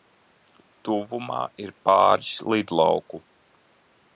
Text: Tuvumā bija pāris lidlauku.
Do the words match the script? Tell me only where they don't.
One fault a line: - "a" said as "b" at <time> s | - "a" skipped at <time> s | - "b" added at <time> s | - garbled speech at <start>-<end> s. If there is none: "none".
- "bija" said as "ir" at 1.6 s